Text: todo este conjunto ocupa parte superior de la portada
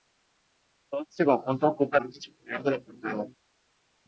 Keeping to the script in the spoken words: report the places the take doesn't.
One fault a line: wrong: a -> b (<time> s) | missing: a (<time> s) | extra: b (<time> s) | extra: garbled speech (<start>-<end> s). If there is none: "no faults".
no faults